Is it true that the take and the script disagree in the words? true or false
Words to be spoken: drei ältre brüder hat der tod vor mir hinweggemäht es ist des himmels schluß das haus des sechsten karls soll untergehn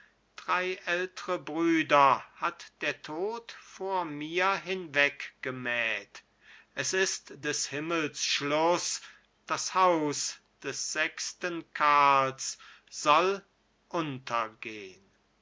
false